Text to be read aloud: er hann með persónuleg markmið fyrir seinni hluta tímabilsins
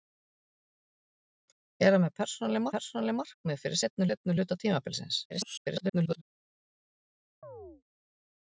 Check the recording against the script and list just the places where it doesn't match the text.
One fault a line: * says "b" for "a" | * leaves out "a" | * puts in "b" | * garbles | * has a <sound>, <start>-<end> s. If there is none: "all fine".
* puts in "persónuleg"
* puts in "seinni"
* garbles
* has a chirp, 7.4-7.8 s